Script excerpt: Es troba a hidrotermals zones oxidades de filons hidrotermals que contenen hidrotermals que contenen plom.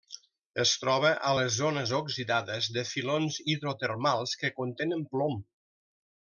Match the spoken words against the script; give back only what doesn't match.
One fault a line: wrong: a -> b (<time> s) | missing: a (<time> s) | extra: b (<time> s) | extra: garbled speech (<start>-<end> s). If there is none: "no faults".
wrong: hidrotermals -> les (1.4 s)
missing: hidrotermals que contenen (5.0 s)